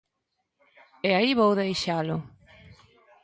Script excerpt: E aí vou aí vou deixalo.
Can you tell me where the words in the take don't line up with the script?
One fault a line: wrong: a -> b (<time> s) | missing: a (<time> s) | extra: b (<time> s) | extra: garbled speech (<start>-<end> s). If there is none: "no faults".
missing: aí vou (1.6 s)